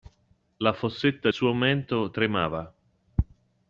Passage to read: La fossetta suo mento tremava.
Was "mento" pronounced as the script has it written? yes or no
yes